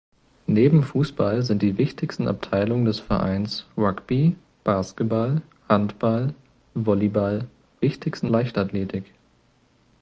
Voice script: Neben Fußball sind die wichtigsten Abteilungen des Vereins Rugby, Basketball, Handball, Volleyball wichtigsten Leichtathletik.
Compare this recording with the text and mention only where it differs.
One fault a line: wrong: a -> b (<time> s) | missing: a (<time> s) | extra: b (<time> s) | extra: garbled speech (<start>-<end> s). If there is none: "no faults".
no faults